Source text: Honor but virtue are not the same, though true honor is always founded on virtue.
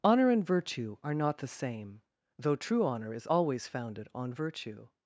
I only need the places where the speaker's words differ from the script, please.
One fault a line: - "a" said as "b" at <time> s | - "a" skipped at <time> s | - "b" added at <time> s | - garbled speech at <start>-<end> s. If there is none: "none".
- "but" said as "and" at 0.3 s